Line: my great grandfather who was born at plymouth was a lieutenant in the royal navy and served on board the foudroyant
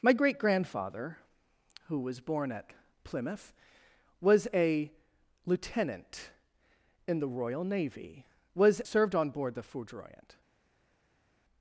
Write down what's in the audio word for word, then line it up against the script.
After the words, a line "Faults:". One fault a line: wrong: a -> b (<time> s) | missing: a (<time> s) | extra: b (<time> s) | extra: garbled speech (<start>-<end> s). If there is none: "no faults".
my great grandfather who was born at plymouth was a lieutenant in the royal navy was served on board the foudroyant
Faults:
wrong: and -> was (8.5 s)